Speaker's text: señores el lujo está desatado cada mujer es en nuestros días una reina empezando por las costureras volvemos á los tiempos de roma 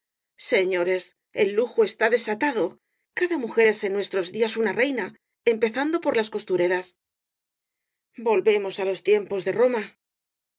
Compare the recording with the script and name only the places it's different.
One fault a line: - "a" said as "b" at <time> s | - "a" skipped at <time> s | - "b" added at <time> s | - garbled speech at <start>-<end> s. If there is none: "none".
none